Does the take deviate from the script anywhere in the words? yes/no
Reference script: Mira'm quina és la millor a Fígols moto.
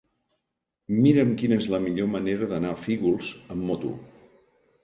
yes